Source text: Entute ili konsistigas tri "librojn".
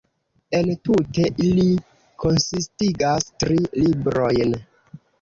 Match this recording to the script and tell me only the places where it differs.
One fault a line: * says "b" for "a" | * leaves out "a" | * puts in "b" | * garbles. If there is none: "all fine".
all fine